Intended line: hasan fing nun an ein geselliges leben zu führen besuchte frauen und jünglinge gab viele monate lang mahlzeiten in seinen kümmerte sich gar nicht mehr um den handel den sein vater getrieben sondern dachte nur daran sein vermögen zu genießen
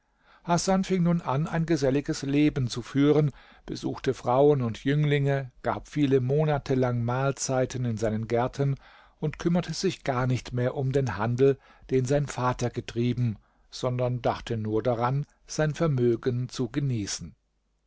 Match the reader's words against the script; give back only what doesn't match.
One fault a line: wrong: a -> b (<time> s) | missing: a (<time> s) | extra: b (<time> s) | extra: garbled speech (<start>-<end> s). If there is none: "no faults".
extra: gärten und (8.3 s)